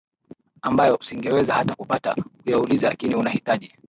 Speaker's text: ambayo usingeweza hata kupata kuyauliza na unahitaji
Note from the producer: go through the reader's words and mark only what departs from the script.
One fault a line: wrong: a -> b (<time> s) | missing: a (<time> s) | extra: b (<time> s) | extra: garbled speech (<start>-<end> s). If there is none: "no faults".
wrong: na -> lakini (2.9 s)